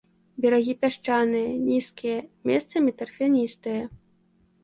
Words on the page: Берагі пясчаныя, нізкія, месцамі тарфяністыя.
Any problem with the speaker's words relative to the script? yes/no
no